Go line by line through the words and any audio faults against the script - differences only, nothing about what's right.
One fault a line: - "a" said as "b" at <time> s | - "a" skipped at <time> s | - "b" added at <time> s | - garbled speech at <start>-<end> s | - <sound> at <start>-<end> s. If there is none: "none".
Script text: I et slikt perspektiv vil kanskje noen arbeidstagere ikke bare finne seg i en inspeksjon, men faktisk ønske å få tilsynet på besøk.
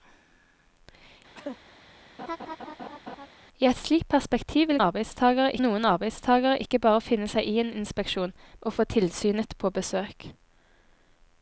- cough at 1.3-1.6 s
- laugh at 2.2-3.3 s
- "kanskje" said as "arbeidstagere" at 4.8 s
- "men faktisk ønske" skipped at 8.3 s